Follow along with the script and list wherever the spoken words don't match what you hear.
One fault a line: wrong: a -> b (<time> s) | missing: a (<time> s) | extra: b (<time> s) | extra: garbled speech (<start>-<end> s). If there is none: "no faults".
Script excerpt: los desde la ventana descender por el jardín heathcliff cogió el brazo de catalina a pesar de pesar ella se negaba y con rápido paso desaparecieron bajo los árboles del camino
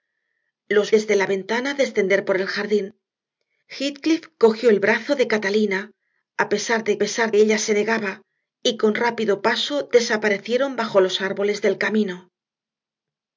no faults